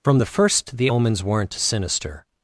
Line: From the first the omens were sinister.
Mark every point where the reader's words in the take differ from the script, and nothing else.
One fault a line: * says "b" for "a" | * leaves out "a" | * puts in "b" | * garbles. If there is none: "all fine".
* says "weren't" for "were"